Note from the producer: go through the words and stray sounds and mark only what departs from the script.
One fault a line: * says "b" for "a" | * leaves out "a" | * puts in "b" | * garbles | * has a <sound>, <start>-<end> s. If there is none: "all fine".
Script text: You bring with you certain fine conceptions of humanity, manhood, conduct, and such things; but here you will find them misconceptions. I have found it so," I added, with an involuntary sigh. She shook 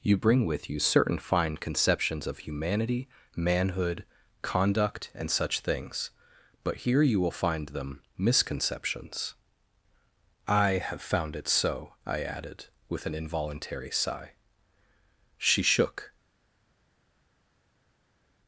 all fine